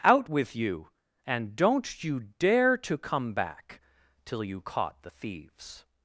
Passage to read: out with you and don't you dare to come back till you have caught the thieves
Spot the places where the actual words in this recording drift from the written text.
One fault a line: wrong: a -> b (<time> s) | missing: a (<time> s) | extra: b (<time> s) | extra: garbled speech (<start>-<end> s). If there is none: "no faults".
missing: have (4.6 s)